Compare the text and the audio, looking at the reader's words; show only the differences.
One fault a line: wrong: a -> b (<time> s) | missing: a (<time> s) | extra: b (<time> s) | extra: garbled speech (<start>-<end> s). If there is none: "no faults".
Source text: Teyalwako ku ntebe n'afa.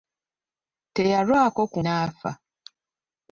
missing: ntebe (1.8 s)